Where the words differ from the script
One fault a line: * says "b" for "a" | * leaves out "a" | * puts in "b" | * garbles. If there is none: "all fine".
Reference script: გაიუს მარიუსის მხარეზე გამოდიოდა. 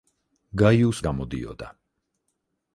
* leaves out "მარიუსის მხარეზე"